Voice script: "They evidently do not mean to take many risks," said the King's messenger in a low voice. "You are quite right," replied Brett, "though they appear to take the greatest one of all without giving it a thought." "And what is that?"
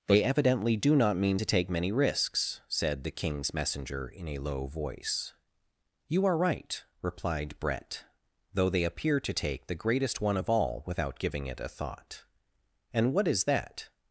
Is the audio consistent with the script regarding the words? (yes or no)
no